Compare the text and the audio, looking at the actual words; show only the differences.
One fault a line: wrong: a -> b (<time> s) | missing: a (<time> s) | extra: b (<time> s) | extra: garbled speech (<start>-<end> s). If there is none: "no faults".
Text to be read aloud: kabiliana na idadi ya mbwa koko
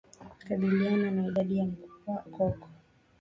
missing: ya mbwa (1.6 s)